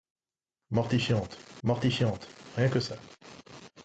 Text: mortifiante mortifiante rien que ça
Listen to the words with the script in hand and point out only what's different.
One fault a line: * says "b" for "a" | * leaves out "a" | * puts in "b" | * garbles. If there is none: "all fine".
all fine